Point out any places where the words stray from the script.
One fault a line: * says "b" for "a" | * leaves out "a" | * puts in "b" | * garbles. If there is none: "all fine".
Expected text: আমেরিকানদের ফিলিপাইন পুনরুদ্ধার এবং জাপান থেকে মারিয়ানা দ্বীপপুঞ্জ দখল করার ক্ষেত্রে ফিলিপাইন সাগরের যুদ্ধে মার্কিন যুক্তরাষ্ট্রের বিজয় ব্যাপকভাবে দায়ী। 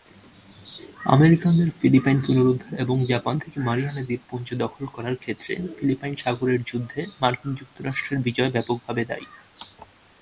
all fine